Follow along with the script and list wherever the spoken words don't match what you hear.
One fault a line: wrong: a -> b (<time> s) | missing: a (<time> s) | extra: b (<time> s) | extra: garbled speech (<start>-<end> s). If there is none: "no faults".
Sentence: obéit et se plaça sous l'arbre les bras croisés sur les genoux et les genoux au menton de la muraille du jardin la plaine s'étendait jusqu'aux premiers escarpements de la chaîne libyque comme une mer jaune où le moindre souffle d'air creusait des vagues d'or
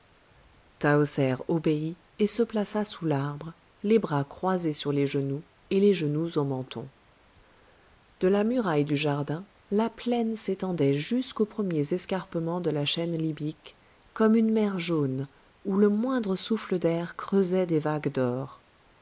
no faults